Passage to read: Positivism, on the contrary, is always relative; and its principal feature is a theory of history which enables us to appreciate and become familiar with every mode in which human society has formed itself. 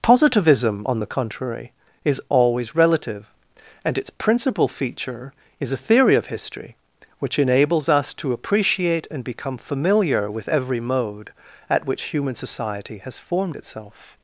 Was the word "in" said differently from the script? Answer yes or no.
yes